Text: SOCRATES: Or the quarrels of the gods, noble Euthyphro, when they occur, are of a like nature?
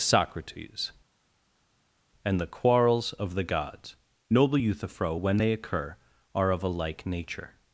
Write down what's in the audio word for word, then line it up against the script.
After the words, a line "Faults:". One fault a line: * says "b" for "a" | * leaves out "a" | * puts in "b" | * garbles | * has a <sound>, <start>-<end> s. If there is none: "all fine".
SOCRATES: And the quarrels of the gods, noble Euthyphro, when they occur, are of a like nature?
Faults:
* says "And" for "Or"